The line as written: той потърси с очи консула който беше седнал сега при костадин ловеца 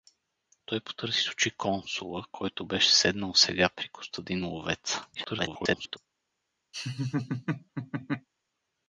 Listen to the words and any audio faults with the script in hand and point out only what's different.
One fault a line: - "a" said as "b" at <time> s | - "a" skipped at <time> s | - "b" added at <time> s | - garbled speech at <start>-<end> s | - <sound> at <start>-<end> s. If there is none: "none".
- garbled speech at 5.1-6.0 s
- laugh at 6.7-8.3 s